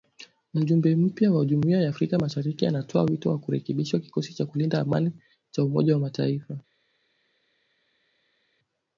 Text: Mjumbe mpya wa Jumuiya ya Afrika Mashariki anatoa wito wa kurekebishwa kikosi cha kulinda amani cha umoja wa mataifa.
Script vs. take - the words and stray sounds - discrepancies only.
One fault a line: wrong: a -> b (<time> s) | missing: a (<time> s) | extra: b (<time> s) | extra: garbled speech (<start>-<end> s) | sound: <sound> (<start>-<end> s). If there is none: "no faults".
no faults